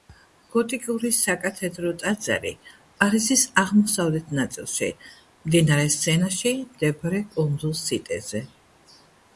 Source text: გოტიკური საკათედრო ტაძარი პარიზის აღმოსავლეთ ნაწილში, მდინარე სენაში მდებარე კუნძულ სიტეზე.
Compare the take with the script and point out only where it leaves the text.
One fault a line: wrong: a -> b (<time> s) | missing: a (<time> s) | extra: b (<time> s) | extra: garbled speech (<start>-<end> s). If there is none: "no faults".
no faults